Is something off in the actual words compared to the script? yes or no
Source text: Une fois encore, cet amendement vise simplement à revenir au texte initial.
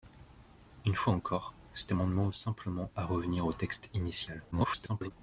yes